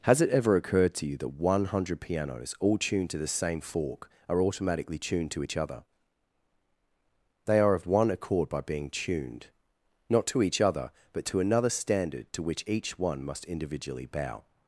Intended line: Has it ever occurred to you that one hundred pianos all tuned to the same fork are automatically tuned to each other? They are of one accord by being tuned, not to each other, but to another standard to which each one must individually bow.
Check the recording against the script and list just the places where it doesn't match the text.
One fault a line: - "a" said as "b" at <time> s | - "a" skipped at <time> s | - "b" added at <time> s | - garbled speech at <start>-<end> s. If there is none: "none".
none